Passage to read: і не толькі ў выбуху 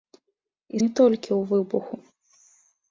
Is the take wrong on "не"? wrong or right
right